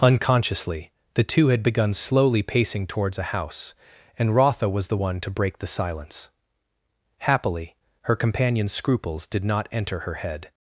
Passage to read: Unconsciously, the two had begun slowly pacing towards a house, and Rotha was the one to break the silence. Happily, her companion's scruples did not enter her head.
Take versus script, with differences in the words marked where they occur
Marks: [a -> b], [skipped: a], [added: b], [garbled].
Unconsciously, the two had begun slowly pacing towards a house, and Rotha was the one to break the silence. Happily, her companion's scruples did not enter her head.